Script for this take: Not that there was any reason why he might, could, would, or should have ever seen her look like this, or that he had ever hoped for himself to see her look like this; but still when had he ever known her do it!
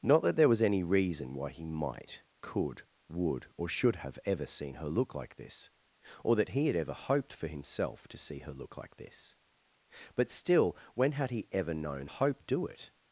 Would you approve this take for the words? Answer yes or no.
no